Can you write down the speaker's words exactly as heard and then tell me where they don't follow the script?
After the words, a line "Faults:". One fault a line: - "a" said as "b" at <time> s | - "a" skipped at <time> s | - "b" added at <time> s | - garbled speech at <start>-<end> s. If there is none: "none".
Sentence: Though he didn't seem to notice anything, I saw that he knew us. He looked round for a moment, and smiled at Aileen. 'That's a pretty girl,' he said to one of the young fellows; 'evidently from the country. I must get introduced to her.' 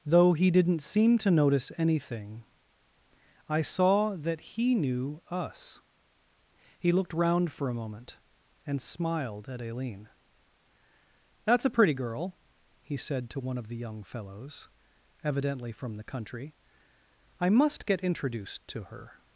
Though he didn't seem to notice anything, I saw that he knew us. He looked round for a moment, and smiled at Aileen. 'That's a pretty girl,' he said to one of the young fellows; 'evidently from the country. I must get introduced to her.'
Faults:
none